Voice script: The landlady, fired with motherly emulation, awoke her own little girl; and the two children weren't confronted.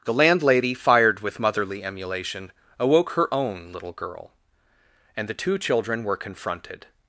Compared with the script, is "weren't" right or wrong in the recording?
wrong